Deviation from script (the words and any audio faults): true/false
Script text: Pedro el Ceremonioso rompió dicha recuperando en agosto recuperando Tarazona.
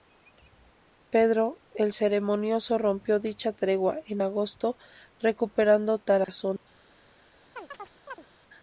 true